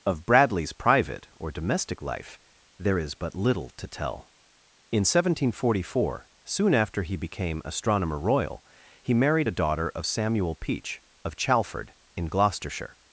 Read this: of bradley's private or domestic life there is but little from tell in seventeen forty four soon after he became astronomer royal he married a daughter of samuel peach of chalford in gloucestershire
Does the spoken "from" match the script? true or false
false